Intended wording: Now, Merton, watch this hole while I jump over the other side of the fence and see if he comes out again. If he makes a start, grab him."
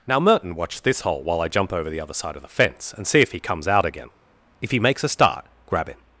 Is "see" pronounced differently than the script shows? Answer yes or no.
no